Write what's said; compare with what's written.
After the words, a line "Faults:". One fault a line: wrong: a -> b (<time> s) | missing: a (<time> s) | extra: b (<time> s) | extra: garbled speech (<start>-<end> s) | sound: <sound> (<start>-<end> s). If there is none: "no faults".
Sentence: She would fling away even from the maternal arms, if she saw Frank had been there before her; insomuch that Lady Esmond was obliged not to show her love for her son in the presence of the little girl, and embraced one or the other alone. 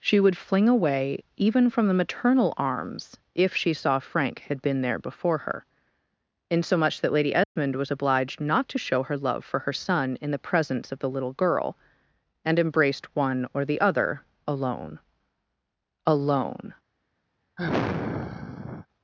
She would fling away even from the maternal arms, if she saw Frank had been there before her; insomuch that Lady Esmond was obliged not to show her love for her son in the presence of the little girl, and embraced one or the other alone alone.
Faults:
sound: dropout (7.4-7.6 s)
extra: alone (16.1 s)
sound: sigh (17.6-18.9 s)